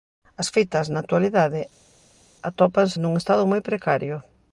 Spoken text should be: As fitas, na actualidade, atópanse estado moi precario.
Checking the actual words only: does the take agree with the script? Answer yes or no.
no